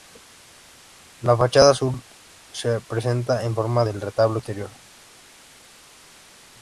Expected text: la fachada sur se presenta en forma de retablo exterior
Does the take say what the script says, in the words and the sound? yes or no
yes